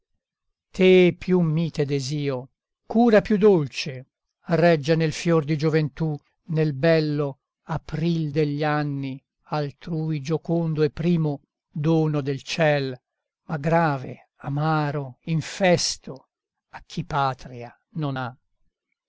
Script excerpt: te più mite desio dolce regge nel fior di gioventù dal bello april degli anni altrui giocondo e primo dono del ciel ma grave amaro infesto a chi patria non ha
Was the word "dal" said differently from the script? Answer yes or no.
yes